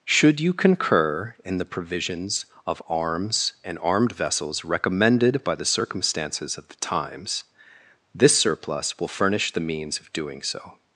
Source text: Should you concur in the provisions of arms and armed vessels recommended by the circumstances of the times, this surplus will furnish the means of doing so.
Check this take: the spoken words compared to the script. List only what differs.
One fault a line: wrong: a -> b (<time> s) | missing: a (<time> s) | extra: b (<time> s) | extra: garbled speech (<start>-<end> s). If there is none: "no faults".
no faults